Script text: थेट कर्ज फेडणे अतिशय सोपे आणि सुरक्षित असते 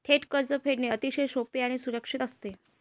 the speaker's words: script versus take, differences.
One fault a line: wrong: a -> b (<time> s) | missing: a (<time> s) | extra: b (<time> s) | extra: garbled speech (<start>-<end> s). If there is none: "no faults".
no faults